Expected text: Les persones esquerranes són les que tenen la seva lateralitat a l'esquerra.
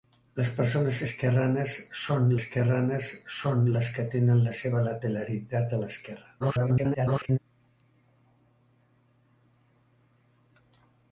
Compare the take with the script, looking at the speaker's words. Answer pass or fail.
fail